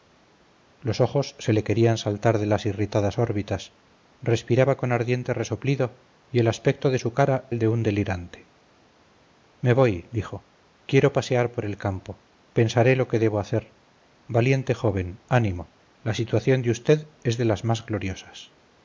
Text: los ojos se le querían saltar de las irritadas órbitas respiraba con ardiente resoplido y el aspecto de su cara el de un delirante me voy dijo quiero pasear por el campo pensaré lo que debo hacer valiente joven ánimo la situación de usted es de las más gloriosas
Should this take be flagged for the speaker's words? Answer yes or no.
no